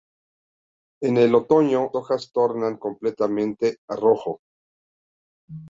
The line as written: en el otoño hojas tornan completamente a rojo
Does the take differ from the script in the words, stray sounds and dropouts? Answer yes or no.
no